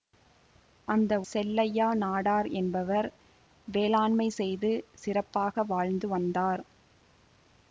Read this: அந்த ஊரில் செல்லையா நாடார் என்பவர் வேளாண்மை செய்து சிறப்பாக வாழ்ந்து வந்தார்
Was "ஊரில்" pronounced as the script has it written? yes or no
no